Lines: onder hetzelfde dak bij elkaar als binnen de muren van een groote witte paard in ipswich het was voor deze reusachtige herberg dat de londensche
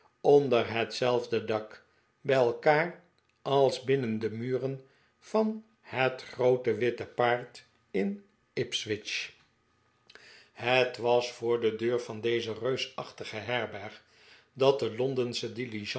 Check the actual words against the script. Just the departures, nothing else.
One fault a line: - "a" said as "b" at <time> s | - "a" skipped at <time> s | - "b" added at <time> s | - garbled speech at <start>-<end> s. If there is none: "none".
- "een" said as "het" at 5.8 s
- "de deur van" added at 11.6 s